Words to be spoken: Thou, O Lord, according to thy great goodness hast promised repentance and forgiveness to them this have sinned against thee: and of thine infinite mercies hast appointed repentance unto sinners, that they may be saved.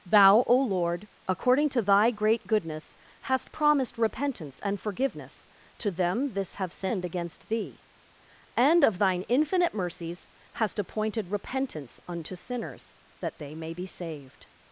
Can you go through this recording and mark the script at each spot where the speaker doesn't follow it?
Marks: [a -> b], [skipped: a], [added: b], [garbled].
Thou, O Lord, according to thy great goodness hast promised repentance and forgiveness to them this have sinned against thee: and of thine infinite mercies hast appointed repentance unto sinners, that they may be saved.